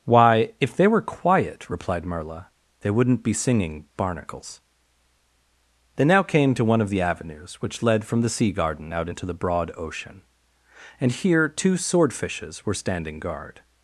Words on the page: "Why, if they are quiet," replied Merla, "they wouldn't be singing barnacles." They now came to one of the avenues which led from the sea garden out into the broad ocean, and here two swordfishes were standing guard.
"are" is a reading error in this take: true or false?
true